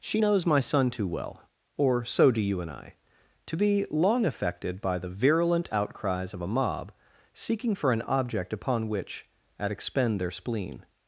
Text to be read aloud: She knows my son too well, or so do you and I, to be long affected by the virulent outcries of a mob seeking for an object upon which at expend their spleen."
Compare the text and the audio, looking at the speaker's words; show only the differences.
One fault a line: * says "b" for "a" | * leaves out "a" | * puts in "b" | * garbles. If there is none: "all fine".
all fine